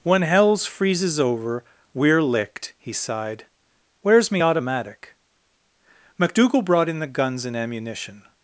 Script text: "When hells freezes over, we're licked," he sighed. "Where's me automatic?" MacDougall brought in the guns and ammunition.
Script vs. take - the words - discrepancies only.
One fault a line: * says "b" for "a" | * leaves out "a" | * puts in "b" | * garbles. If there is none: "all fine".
all fine